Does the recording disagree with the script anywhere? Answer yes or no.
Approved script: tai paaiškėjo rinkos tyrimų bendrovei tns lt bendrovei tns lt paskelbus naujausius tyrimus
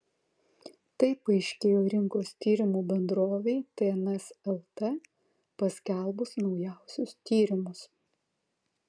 yes